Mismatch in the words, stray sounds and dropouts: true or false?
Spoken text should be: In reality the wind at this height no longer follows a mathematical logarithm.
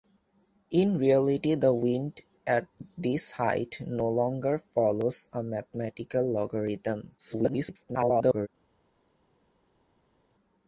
true